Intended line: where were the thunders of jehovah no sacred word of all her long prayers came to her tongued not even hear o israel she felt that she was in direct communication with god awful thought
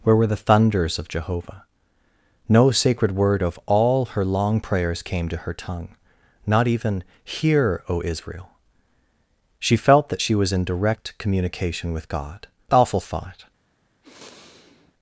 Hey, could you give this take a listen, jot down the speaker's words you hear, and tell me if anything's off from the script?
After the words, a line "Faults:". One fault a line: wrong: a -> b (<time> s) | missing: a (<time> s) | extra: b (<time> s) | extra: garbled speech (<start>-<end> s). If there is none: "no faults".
where were the thunders of jehovah no sacred word of all her long prayers came to her tongue not even hear o israel she felt that she was in direct communication with god awful thought
Faults:
wrong: tongued -> tongue (5.5 s)